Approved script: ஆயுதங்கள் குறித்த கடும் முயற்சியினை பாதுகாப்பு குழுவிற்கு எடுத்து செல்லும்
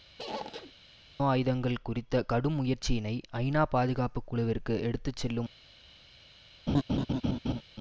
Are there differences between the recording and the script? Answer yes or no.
yes